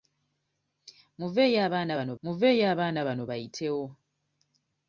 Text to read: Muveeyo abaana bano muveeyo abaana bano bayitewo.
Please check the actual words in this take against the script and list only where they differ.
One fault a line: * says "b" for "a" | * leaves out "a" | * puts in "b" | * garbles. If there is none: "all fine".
all fine